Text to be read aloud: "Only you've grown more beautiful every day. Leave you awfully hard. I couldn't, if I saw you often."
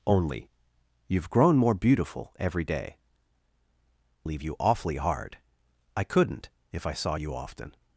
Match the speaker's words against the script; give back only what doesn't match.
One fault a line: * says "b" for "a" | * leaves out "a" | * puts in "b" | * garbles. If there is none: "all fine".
all fine